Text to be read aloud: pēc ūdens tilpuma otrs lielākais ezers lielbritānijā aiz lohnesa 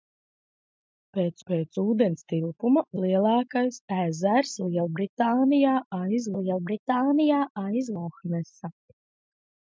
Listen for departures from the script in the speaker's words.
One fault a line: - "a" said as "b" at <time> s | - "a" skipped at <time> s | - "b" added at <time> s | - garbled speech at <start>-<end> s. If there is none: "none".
- "pēc" added at 1.5 s
- "otrs" skipped at 2.8 s
- "lielbritānijā aiz" added at 6.4 s